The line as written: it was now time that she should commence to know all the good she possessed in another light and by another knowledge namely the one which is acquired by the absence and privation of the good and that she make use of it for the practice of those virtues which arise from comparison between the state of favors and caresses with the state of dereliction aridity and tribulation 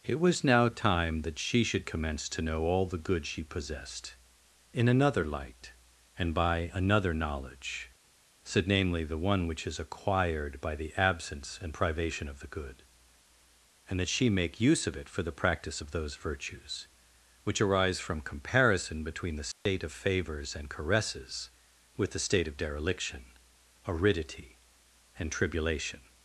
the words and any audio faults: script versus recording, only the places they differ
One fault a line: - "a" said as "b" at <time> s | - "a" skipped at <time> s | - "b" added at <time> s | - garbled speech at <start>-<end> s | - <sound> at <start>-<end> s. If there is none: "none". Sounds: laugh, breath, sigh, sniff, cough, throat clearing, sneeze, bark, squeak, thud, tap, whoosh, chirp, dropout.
- "said" added at 8.4 s
- dropout at 19.5-19.7 s